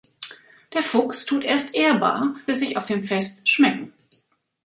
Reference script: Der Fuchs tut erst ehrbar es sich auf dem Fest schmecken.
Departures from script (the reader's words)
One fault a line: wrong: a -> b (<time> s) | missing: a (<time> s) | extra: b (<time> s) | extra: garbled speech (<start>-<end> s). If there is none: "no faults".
no faults